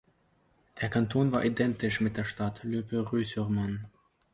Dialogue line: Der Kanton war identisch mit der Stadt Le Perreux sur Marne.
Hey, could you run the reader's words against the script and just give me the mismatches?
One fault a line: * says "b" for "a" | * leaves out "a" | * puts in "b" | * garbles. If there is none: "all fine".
all fine